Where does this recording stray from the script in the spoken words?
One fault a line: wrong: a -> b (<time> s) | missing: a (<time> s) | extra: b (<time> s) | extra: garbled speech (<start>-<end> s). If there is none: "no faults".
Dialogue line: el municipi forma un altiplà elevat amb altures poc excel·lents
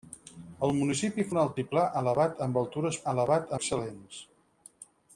missing: forma (1.2 s)
wrong: poc -> elevat (3.1 s)